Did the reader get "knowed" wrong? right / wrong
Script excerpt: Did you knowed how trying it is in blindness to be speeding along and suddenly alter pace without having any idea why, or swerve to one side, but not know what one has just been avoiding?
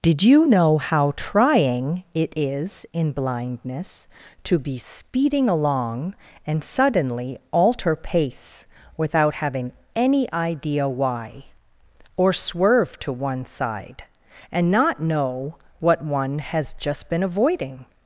wrong